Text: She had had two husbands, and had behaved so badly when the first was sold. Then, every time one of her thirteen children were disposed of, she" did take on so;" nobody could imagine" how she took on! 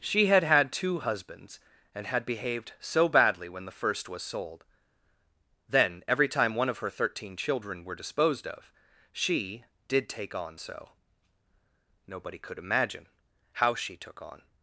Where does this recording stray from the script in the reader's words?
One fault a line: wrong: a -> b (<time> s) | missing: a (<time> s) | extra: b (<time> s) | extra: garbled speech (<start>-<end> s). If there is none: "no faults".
no faults